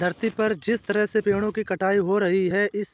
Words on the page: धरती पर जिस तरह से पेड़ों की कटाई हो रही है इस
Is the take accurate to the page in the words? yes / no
yes